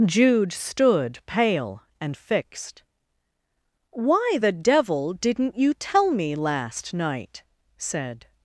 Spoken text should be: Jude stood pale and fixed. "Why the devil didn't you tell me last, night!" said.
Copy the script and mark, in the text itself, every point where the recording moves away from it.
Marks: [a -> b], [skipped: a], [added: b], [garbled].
Jude stood pale and fixed. "Why the devil didn't you tell me last, night!" said.